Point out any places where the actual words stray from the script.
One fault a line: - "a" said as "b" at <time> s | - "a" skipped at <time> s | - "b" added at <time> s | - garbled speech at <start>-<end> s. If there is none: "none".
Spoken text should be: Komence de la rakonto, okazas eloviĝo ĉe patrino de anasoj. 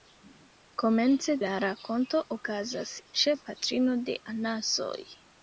- "de" skipped at 1.4 s
- "eloviĝo" skipped at 2.9 s